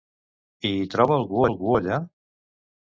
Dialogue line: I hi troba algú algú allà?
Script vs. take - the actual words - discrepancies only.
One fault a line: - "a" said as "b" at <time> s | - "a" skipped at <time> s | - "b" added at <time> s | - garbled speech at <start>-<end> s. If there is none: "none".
none